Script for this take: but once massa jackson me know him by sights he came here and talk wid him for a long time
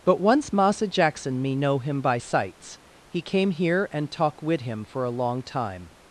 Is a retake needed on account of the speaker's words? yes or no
no